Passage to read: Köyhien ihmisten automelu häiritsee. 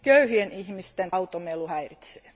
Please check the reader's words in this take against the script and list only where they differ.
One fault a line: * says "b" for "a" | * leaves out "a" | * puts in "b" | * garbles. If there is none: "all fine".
all fine